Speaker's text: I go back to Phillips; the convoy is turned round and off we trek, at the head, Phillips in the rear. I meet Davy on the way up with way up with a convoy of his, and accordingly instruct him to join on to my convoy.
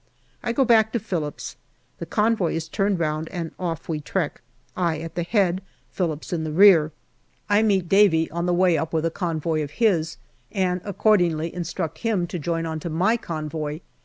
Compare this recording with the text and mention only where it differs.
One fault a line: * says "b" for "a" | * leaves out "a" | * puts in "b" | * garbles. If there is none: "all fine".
* puts in "I"
* leaves out "way up with"